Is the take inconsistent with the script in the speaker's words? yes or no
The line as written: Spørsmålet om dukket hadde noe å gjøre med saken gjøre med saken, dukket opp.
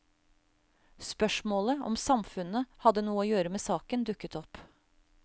yes